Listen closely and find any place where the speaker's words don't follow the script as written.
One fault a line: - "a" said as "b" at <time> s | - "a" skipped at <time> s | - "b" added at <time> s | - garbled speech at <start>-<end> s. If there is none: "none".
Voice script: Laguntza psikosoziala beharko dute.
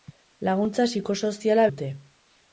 - "beharko" skipped at 1.7 s